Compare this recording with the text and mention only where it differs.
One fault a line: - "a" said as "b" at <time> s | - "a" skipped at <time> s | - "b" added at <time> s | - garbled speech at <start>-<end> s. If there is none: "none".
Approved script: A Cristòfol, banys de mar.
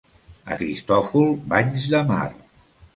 none